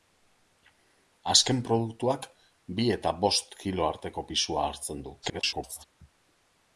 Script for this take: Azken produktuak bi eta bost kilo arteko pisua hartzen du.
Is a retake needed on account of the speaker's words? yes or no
yes